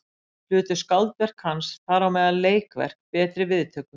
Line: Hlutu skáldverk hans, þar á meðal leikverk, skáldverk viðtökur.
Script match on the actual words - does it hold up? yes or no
no